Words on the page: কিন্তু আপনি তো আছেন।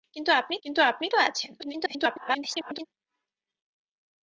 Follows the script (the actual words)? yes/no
no